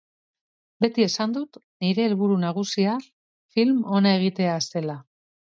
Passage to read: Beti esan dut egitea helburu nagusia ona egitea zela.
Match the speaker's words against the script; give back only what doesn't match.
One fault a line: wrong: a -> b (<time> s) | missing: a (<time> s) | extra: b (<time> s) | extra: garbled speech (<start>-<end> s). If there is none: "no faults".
wrong: egitea -> nire (1.9 s)
extra: film (3.6 s)